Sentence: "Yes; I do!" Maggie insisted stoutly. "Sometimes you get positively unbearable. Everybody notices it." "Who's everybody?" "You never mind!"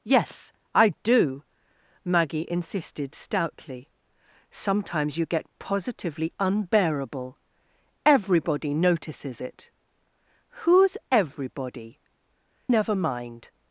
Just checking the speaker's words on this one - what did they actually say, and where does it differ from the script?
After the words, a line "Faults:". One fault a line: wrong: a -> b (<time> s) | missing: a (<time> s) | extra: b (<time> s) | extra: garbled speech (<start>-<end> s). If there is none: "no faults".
"Yes; I do!" Maggie insisted stoutly. "Sometimes you get positively unbearable. Everybody notices it." "Who's everybody?" "Never mind!"
Faults:
missing: You (12.0 s)